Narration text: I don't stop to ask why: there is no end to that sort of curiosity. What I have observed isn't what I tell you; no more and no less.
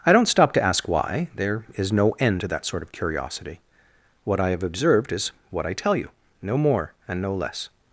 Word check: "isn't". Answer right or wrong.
wrong